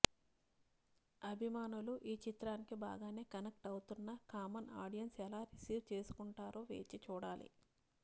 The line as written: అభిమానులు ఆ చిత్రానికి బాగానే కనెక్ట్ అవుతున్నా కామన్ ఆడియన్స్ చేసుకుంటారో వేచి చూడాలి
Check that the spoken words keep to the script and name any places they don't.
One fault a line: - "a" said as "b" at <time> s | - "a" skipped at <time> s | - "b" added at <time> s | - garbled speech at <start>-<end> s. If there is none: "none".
- "ఆ" said as "ఈ" at 2.0 s
- "ఎలా రిసీవ్" added at 5.3 s